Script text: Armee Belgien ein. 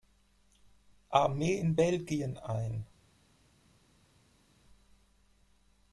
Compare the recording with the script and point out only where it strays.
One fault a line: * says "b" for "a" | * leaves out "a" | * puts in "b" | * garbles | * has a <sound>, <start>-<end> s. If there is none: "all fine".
* puts in "in"